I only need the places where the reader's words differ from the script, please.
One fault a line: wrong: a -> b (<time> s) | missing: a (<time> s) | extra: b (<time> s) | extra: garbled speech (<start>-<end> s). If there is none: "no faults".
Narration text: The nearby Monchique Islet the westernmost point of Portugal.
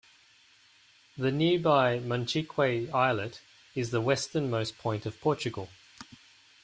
extra: is (3.8 s)